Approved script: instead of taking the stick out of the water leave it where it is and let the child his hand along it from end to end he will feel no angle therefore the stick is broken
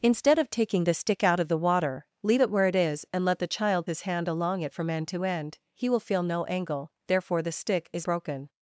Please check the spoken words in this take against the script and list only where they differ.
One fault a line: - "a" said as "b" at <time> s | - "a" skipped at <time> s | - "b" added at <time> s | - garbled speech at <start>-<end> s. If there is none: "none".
none